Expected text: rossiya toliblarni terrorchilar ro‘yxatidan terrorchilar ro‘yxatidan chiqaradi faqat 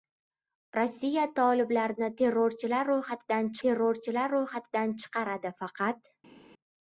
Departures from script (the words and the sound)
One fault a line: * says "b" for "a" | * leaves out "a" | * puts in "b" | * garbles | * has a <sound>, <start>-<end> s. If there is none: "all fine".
all fine